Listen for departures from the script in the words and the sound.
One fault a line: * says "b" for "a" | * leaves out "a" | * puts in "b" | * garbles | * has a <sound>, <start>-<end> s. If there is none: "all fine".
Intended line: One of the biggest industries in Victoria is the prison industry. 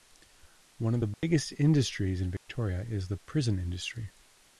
* has a dropout, 1.1-1.2 s
* has a dropout, 2.4-2.5 s